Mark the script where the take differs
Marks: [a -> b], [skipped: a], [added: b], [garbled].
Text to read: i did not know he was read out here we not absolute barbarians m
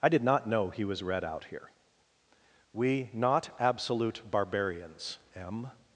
i did not know he was read out here we not absolute barbarians m